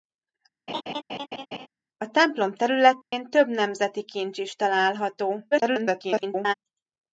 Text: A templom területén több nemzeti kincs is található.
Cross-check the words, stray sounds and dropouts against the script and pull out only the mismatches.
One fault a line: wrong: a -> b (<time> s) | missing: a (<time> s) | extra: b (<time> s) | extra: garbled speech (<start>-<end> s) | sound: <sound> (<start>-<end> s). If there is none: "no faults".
sound: laugh (0.7-1.7 s)
sound: dropout (3.0-3.1 s)
extra: garbled speech (5.5-6.5 s)